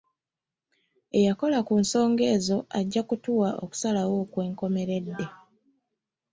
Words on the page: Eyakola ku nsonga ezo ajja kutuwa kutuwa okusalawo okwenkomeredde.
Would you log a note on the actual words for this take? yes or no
yes